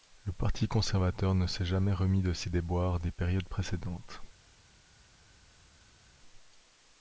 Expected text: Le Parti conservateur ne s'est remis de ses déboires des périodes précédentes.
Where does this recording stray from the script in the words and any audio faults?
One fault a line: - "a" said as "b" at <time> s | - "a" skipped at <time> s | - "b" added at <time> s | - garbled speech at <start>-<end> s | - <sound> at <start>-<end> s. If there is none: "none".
- "jamais" added at 1.6 s